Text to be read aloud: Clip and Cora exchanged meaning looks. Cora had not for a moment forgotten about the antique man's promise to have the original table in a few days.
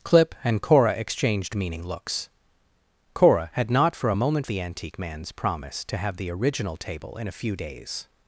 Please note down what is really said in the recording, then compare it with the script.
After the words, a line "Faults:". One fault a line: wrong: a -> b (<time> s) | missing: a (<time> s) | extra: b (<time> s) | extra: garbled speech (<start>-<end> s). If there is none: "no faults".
Clip and Cora exchanged meaning looks. Cora had not for a moment the antique man's promise to have the original table in a few days.
Faults:
missing: forgotten about (4.5 s)